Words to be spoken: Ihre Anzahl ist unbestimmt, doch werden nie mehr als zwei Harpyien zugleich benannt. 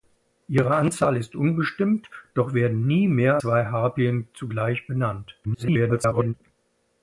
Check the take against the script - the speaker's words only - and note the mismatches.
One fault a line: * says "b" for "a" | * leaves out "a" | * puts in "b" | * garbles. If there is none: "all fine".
* leaves out "als"
* garbles